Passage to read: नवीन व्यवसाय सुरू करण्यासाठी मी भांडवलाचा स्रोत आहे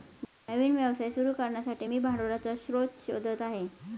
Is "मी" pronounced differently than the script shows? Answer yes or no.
no